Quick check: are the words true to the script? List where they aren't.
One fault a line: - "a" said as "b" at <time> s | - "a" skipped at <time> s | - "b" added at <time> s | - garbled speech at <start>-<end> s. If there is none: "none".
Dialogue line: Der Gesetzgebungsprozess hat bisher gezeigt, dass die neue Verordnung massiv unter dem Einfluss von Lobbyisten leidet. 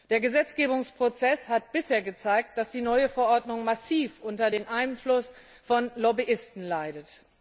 none